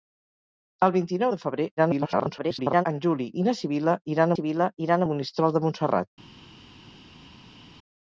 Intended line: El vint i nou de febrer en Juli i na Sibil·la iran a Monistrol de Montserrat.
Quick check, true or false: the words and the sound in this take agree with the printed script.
false